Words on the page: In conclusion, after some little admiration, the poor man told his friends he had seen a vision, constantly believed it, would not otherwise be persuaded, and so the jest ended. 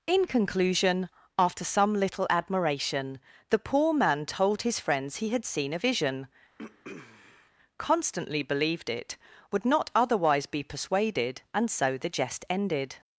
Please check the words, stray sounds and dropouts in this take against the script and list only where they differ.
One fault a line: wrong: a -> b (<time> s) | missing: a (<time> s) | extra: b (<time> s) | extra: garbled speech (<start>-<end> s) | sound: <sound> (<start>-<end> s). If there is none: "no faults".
sound: throat clearing (6.6-7.5 s)